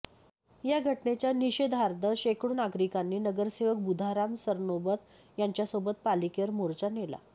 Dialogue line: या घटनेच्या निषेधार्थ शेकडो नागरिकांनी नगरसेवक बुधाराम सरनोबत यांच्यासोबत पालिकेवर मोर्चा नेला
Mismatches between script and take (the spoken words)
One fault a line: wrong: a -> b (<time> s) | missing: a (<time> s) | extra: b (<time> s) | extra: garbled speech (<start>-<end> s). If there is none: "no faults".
no faults